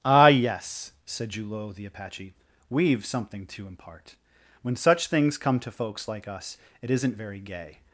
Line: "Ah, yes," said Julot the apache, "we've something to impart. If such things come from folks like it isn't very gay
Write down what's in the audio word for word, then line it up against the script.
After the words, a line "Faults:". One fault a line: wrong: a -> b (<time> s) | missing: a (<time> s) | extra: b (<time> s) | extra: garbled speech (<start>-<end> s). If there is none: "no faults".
"Ah, yes," said Julot the apache, "we've something to impart. When such things come to folks like us, it isn't very gay
Faults:
wrong: If -> When (4.6 s)
wrong: from -> to (5.6 s)
extra: us (6.3 s)